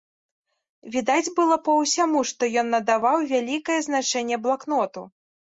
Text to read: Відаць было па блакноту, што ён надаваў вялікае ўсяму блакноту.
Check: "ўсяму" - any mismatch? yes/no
yes